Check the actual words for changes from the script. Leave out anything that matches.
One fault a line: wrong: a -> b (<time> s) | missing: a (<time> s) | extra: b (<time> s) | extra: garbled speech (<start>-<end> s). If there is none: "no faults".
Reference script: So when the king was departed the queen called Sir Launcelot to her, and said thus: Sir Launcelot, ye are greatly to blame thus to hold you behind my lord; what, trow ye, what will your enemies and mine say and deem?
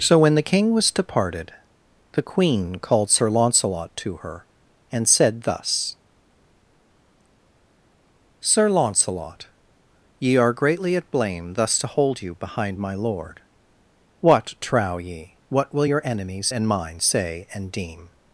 wrong: to -> at (10.9 s)